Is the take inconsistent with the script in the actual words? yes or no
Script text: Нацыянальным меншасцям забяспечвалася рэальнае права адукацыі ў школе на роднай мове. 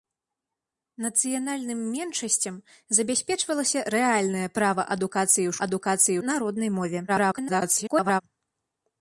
yes